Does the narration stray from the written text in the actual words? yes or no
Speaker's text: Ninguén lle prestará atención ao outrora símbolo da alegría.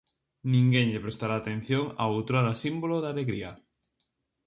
no